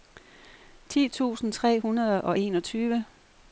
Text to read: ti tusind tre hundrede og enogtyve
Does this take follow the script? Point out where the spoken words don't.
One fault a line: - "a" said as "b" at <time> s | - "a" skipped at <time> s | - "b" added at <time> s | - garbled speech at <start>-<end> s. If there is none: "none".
none